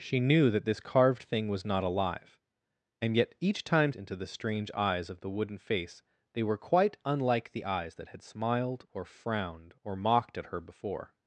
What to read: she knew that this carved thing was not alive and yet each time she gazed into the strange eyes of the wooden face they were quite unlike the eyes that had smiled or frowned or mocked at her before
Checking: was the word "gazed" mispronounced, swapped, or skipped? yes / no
yes